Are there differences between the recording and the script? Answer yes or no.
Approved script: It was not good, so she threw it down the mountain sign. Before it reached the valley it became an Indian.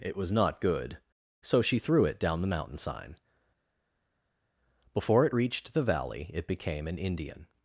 no